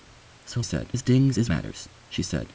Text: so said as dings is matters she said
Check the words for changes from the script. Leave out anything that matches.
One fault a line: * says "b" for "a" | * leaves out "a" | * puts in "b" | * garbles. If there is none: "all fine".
all fine